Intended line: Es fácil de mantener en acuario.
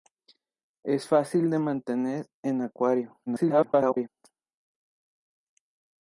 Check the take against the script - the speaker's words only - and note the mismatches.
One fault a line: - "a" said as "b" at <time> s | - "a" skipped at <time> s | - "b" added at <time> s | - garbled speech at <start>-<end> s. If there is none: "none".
- garbled speech at 3.3-4.1 s